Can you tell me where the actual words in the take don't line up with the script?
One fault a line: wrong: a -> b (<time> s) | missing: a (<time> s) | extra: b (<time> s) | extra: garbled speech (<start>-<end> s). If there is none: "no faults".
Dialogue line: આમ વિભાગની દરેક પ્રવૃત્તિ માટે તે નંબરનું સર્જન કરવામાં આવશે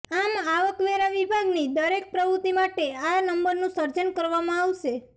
extra: આવકવેરા (0.5 s)
wrong: તે -> આ (3.0 s)